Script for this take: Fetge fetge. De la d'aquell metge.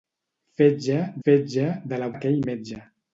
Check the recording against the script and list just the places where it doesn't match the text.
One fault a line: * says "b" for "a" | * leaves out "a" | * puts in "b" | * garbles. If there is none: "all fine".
all fine